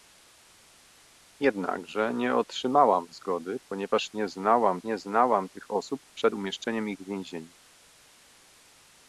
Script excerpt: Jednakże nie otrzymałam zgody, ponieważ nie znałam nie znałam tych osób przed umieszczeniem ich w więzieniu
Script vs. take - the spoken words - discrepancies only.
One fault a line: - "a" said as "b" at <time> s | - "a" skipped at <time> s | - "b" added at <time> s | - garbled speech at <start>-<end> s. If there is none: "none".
none